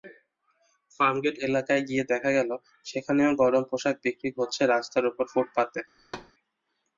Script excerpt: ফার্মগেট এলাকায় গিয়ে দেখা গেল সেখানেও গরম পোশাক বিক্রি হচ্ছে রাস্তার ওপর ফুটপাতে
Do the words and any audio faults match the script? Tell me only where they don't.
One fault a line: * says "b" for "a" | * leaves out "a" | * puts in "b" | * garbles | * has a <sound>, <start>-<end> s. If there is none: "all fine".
* has a thud, 6.0-6.3 s